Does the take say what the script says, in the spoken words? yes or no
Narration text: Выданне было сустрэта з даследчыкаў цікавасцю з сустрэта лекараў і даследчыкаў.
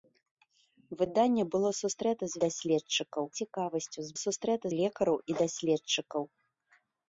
yes